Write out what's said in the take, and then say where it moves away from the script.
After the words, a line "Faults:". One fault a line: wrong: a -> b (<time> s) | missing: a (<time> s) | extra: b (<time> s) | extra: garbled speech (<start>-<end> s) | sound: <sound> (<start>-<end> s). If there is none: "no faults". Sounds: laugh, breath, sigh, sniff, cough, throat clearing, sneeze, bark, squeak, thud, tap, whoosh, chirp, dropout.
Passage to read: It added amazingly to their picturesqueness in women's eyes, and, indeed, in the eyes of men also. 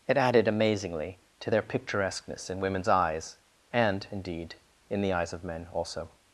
It added amazingly to their picturesqueness in women's eyes, and, indeed, in the eyes of men also.
Faults:
no faults